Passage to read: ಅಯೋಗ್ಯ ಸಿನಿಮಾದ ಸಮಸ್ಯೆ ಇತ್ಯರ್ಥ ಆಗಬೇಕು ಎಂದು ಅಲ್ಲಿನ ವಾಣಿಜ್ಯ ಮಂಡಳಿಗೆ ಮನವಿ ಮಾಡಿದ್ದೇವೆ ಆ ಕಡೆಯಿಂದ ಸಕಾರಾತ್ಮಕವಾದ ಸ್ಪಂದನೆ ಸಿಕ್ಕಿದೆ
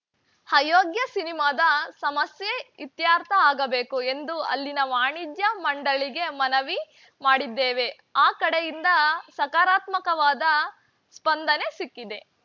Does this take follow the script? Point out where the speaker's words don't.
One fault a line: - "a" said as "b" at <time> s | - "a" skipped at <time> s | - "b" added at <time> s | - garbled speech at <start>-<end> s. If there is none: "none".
none